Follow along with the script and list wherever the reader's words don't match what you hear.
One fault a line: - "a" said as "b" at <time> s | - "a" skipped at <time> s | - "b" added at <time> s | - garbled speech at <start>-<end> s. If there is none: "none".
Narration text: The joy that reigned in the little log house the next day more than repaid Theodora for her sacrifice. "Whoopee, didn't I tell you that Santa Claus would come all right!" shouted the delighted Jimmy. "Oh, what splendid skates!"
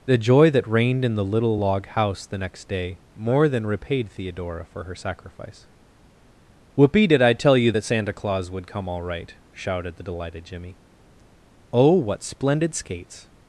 - "didn't" said as "did" at 7.1 s